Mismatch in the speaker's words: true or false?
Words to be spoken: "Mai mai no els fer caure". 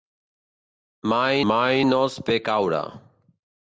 false